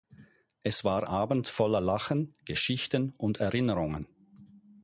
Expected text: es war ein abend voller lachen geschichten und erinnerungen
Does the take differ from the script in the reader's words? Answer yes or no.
yes